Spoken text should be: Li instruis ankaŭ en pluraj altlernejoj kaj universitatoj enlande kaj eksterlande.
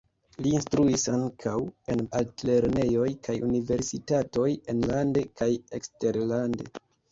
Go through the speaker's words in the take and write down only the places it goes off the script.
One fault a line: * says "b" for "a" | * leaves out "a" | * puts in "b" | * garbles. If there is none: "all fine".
* leaves out "pluraj"